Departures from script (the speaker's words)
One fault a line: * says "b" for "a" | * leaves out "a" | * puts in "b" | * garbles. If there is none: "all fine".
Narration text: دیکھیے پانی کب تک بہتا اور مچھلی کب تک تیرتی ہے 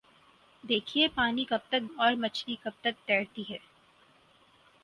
* leaves out "بہتا"